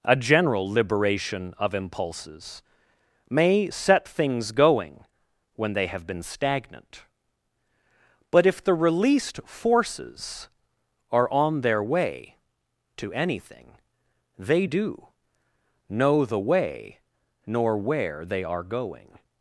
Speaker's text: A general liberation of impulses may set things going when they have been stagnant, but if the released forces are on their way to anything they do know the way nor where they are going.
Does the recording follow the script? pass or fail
pass